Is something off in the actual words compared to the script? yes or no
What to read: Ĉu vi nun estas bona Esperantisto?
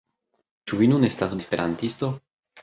yes